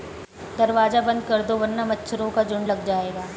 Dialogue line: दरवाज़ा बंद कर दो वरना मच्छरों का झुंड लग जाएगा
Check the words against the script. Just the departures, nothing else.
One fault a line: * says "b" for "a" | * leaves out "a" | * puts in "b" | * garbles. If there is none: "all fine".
all fine